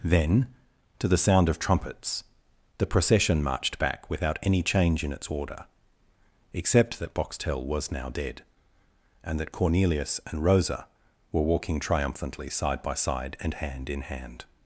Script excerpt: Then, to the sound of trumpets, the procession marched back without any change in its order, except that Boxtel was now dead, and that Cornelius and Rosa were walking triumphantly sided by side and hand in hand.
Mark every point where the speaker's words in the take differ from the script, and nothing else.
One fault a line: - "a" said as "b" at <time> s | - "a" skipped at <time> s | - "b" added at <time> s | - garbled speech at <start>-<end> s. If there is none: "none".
- "sided" said as "side" at 12.5 s